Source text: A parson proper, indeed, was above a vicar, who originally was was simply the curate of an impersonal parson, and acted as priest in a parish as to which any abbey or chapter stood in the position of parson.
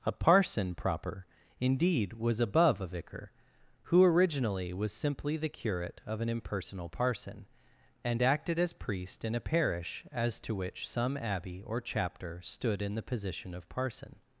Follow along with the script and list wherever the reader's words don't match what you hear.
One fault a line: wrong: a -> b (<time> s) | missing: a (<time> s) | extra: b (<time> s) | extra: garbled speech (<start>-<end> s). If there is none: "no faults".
missing: was (4.9 s)
wrong: any -> some (10.9 s)